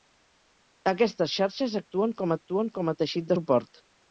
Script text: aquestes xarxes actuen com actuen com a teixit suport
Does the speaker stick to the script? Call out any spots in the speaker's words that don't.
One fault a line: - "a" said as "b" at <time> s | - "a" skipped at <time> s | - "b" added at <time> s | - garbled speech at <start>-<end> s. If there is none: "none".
none